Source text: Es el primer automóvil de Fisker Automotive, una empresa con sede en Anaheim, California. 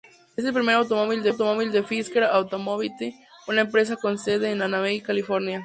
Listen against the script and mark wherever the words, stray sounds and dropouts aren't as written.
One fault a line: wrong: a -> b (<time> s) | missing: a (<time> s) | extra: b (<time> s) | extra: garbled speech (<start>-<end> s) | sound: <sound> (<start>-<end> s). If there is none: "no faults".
no faults